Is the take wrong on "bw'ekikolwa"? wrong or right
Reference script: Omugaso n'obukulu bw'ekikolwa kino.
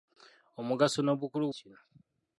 wrong